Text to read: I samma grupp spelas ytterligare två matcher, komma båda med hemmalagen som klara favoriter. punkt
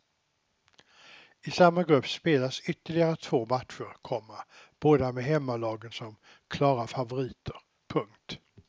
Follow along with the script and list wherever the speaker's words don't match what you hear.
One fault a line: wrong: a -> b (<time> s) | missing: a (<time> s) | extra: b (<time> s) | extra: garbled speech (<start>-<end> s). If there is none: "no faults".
no faults